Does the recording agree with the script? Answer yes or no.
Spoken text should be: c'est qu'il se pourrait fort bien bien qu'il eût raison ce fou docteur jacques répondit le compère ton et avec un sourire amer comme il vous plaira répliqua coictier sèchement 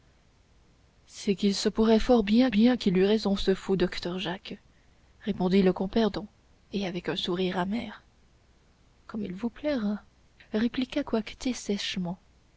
yes